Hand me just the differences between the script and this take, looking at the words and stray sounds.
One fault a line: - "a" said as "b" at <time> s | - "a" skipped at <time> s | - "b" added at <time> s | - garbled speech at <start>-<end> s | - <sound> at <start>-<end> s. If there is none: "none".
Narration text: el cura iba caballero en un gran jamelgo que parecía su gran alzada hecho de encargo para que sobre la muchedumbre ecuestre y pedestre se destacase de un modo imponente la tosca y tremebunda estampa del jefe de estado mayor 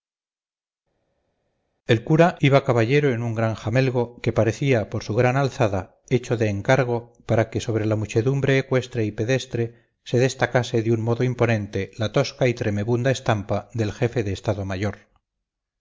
- "por" added at 4.9 s